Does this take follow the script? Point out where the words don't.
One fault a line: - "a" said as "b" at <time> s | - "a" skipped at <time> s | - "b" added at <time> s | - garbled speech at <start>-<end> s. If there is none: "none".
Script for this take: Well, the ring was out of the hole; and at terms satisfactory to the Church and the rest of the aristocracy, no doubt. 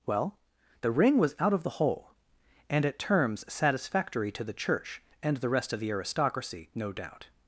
none